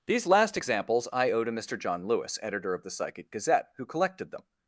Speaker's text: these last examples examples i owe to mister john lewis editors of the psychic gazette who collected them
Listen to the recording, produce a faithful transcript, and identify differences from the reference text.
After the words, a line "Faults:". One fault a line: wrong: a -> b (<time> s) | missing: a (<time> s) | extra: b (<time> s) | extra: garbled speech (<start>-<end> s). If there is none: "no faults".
these last examples i owe to mister john lewis editor of the psychic gazette who collected them
Faults:
missing: examples (1.1 s)
wrong: editors -> editor (2.4 s)